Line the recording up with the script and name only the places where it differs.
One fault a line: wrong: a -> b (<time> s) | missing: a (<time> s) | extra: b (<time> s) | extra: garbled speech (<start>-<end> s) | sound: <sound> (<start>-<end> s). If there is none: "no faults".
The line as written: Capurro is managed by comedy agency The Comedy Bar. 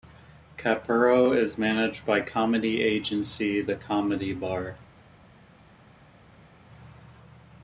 no faults